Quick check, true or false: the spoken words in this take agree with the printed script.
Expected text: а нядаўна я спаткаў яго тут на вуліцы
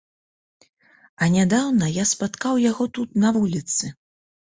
true